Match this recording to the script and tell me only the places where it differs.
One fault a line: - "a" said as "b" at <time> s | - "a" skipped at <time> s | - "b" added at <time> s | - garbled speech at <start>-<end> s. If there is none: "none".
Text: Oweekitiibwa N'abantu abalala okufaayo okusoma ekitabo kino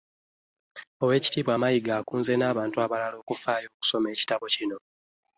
- "Mayiga akunze" added at 1.6 s